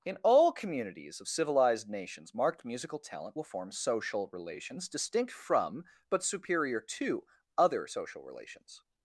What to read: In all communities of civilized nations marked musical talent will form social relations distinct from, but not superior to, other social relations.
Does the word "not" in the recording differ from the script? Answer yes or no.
yes